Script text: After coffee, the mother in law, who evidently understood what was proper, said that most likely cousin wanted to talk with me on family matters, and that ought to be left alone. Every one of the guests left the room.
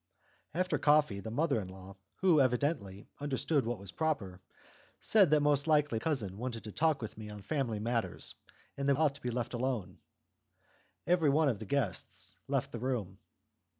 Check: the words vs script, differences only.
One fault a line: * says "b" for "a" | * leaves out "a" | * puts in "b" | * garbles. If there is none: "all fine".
all fine